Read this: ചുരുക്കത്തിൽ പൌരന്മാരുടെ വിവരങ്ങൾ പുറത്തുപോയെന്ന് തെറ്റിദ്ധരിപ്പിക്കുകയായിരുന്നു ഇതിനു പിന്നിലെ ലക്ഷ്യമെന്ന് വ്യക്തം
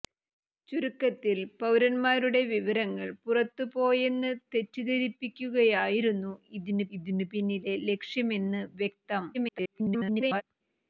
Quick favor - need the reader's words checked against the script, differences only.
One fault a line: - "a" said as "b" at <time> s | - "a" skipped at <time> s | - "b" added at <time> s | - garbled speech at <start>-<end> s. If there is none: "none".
- "ഇതിനു" added at 7.0 s
- garbled speech at 9.3-10.4 s